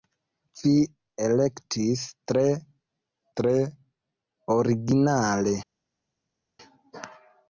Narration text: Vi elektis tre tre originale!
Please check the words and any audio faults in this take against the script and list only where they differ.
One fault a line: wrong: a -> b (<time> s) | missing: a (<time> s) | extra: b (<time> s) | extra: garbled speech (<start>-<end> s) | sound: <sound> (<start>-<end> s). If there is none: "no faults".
no faults